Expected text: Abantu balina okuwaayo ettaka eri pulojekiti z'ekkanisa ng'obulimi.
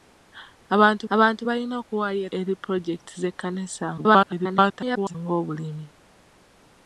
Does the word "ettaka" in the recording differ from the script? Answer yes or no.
yes